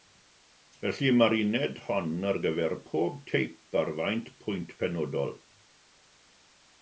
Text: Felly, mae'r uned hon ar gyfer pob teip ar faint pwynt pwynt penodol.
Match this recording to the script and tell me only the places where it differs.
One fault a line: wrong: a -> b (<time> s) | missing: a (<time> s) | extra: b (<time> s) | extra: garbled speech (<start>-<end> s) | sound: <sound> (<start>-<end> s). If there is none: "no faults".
missing: pwynt (4.7 s)